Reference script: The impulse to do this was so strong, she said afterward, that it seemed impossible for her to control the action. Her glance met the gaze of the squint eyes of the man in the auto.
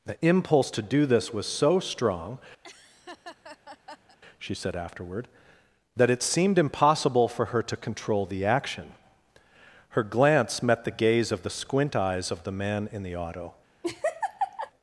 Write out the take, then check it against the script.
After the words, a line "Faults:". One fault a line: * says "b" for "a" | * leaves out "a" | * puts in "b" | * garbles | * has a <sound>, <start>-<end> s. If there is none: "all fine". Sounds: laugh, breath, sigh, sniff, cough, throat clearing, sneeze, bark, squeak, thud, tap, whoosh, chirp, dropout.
The impulse to do this was so strong, she said afterward, that it seemed impossible for her to control the action. Her glance met the gaze of the squint eyes of the man in the auto.
Faults:
* has a laugh, 2.6-4.2 s
* has a laugh, 13.8-14.7 s